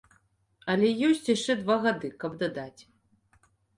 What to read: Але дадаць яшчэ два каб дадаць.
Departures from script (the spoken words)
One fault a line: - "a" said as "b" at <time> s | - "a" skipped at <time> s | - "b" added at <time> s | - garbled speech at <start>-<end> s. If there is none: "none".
- "дадаць" said as "ёсць" at 1.1 s
- "гады" added at 1.9 s